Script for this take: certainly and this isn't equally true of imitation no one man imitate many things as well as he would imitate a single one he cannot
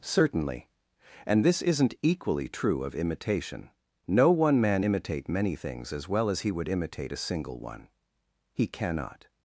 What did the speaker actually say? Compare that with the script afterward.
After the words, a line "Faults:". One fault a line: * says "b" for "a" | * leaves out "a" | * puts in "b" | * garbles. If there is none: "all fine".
certainly and this isn't equally true of imitation no one man imitate many things as well as he would imitate a single one he cannot
Faults:
all fine